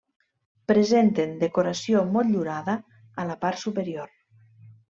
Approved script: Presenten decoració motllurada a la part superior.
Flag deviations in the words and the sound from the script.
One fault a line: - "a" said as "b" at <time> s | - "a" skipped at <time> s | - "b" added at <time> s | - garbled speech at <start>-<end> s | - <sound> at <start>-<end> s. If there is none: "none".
none